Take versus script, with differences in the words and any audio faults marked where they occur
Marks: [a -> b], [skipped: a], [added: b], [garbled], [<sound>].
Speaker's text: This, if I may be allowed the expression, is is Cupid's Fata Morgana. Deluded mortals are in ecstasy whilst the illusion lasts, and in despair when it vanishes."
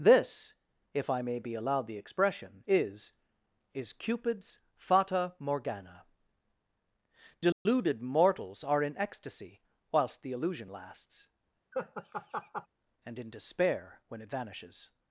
This, if I may be allowed the expression, is is Cupid's Fata Morgana. Deluded [dropout] mortals are in ecstasy whilst the illusion lasts, [laugh] and in despair when it vanishes."